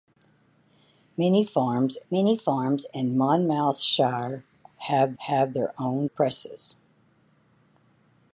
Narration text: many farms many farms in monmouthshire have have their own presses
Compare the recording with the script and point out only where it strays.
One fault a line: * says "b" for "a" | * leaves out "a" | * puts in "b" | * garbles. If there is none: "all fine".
all fine